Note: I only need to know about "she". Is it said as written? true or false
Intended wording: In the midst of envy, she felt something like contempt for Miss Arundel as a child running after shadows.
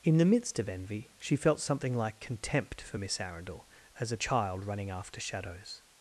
true